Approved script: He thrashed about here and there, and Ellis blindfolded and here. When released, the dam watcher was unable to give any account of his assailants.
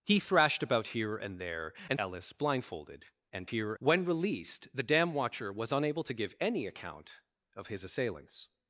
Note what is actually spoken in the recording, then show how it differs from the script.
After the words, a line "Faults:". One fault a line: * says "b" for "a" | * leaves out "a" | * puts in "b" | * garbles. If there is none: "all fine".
He thrashed about here and there, and Ellis blindfolded and here. When released, the dam watcher was unable to give any account of his assailants.
Faults:
all fine